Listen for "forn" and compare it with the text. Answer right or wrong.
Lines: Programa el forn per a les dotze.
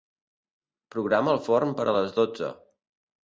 right